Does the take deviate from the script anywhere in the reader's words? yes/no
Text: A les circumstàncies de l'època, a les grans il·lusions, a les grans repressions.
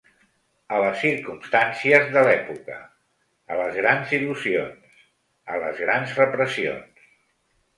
no